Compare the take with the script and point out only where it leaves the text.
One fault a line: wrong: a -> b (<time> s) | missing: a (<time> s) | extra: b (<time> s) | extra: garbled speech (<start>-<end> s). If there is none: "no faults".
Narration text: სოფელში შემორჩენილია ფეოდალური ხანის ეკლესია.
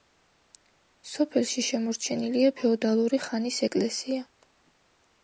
no faults